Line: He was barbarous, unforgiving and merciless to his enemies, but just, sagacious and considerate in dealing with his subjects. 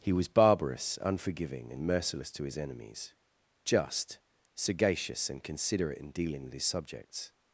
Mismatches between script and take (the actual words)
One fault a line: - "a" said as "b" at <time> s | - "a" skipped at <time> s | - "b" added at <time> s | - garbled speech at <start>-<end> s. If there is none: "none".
- "but" skipped at 3.1 s